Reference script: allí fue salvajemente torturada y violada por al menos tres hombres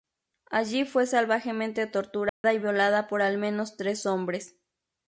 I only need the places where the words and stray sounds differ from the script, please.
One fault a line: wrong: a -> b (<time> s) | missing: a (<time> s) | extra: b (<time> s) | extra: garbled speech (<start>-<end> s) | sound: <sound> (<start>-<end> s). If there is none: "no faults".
sound: dropout (2.3-2.4 s)